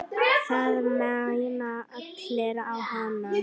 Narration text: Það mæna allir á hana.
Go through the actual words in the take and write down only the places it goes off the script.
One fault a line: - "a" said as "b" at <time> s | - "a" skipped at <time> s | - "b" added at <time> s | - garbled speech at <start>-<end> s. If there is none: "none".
none